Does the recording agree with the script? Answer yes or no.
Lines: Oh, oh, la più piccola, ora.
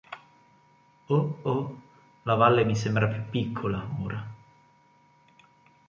no